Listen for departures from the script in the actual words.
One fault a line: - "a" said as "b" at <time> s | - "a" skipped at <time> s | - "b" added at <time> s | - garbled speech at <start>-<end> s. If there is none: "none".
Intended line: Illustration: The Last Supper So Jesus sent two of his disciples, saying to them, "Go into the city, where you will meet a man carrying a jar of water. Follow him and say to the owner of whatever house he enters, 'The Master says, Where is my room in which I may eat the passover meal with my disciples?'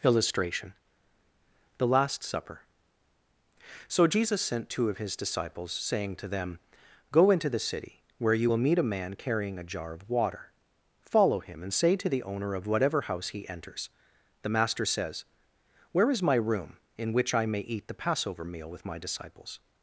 none